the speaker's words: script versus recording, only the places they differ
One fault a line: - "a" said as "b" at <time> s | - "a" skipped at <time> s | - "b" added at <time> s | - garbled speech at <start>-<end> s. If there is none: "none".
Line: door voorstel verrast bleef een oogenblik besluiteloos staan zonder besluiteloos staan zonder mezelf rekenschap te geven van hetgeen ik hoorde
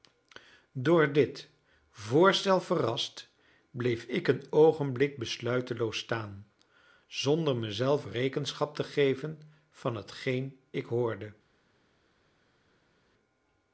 - "dit" added at 1.1 s
- "ik" added at 4.0 s
- "besluiteloos staan zonder" skipped at 7.5 s